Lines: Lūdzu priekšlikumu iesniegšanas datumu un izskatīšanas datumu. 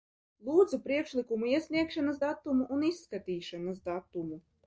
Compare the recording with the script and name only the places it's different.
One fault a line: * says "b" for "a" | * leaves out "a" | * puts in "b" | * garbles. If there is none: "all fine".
all fine